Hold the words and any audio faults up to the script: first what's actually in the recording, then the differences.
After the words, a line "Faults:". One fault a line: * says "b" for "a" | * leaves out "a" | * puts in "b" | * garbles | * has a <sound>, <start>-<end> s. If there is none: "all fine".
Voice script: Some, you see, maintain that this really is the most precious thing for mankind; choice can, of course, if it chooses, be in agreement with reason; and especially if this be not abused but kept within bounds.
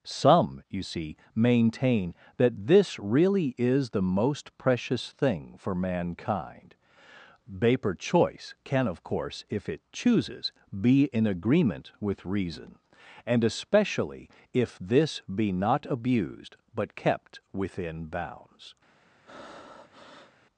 Some, you see, maintain that this really is the most precious thing for mankind; vapor choice can, of course, if it chooses, be in agreement with reason; and especially if this be not abused but kept within bounds.
Faults:
* puts in "vapor"
* has a breath, 19.3-20.3 s